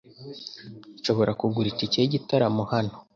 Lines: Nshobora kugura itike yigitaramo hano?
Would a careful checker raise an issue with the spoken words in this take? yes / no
no